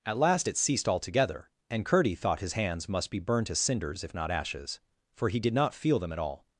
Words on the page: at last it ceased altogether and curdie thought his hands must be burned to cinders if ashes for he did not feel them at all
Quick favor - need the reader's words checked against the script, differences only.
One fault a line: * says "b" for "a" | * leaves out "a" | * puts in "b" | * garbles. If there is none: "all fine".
* puts in "not"